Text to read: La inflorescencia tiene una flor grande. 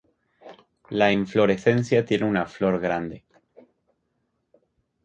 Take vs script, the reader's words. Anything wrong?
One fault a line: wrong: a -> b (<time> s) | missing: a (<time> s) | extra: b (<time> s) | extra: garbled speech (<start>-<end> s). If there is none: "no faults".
no faults